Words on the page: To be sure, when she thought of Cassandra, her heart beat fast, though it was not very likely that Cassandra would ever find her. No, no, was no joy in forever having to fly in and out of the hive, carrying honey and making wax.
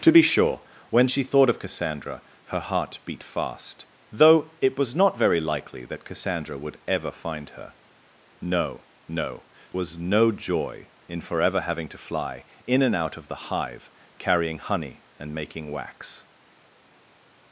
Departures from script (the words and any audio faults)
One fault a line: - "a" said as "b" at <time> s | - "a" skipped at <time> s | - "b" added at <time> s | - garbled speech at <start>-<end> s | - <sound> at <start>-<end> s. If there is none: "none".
none